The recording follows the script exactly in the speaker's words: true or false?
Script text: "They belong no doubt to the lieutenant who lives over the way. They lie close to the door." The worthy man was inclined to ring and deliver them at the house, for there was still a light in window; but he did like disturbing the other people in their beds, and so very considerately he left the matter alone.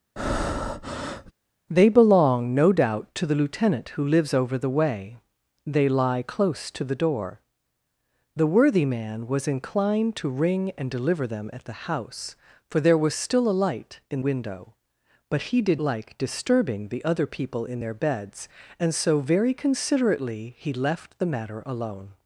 true